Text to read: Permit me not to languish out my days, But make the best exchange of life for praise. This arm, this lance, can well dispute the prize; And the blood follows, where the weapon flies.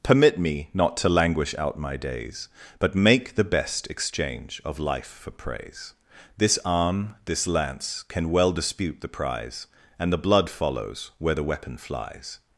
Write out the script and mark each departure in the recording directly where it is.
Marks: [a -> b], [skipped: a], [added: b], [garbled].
Permit me not to languish out my days, But make the best exchange of life for praise. This arm, this lance, can well dispute the prize; And the blood follows, where the weapon flies.